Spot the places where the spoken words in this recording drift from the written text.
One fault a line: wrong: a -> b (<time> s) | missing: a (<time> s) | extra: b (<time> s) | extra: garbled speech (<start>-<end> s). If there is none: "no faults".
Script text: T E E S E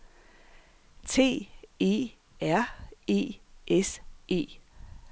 extra: R (2.4 s)